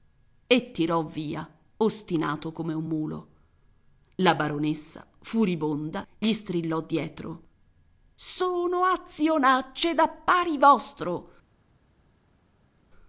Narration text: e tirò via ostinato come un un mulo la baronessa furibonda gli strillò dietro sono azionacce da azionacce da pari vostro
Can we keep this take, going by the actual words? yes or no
no